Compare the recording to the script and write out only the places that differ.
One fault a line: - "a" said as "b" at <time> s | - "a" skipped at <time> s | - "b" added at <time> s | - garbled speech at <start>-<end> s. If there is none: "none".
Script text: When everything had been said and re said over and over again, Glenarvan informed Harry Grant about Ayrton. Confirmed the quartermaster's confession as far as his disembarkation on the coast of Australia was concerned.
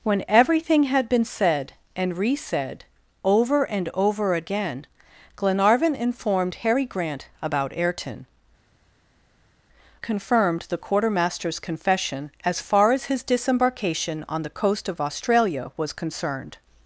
none